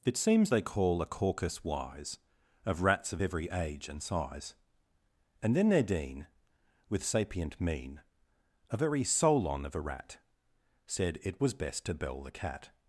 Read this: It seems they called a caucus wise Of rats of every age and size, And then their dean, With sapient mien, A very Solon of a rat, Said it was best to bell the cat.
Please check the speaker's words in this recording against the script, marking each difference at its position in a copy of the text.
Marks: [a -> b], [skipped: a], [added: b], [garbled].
It seems they [called -> call] a caucus wise Of rats of every age and size, And then their dean, With sapient mien, A very Solon of a rat, Said it was best to bell the cat.